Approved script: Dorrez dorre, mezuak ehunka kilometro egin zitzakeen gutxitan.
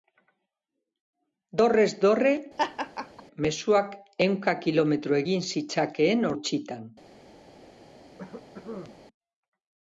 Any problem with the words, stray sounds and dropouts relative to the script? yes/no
yes